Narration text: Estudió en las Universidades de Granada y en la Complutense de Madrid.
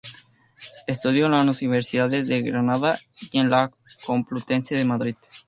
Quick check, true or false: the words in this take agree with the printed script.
true